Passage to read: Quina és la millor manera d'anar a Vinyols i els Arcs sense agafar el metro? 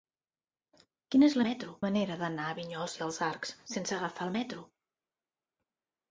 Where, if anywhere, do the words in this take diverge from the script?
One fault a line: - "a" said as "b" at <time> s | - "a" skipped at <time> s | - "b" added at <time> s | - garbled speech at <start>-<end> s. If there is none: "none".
- "millor" said as "metro" at 1.5 s